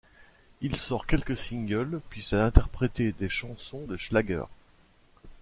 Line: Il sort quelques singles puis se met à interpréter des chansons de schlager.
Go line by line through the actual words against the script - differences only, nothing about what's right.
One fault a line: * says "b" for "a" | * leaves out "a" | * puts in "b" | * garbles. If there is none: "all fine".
* leaves out "met"